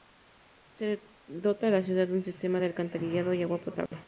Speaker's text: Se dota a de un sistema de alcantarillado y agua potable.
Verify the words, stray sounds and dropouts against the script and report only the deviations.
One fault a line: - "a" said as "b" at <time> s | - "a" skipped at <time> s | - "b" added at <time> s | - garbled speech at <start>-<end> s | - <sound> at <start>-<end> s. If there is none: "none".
- "la ciudad" added at 1.7 s
- dropout at 3.9-3.9 s